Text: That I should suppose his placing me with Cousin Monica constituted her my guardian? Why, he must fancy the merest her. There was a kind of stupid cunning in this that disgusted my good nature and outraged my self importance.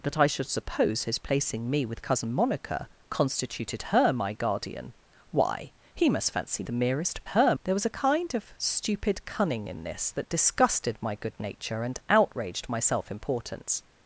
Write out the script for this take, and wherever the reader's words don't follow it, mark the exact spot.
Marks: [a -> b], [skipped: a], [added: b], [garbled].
That I should suppose his placing me with Cousin Monica constituted her my guardian? Why, he must fancy the merest her. There was a kind of stupid cunning in this that disgusted my good nature and outraged my self importance.